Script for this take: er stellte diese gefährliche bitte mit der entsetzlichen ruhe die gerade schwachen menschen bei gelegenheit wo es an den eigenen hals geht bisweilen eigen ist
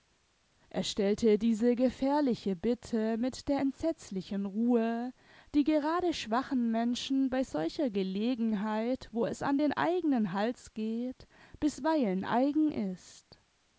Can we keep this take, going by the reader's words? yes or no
no